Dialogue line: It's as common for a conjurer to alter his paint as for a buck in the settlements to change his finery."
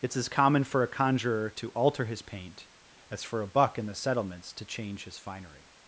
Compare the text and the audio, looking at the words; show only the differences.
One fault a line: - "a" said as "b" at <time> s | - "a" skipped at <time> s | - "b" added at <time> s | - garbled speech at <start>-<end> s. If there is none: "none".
none